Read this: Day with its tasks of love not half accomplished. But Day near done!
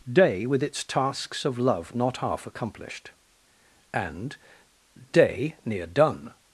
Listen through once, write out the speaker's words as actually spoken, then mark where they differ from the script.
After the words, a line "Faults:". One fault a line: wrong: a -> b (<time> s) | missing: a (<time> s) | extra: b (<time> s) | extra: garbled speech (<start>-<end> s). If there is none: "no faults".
Day with its tasks of love not half accomplished. And Day near done!
Faults:
wrong: But -> And (3.9 s)